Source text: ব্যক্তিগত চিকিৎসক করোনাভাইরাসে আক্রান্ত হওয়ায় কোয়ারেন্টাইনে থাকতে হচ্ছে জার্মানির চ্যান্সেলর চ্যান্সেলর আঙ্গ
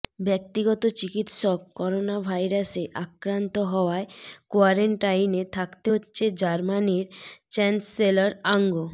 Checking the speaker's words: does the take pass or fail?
fail